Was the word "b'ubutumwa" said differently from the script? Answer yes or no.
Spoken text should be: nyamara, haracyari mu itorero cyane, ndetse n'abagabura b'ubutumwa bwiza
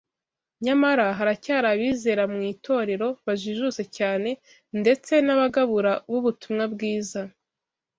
no